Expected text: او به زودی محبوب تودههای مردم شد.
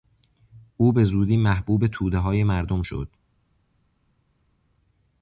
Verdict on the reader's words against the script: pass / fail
pass